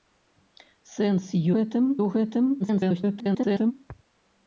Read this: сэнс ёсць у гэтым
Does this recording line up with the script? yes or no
no